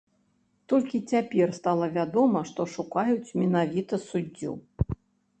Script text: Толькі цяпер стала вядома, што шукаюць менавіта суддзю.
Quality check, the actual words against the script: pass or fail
pass